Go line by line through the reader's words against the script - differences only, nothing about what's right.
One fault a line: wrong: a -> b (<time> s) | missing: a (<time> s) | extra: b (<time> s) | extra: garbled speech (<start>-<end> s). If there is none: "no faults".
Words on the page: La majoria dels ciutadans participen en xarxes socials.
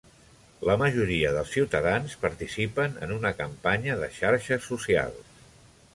extra: una campanya de (3.2 s)